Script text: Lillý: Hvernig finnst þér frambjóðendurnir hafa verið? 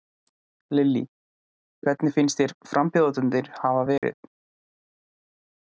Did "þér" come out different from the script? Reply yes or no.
no